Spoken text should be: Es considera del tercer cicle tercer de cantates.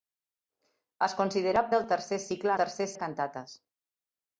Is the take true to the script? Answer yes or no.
yes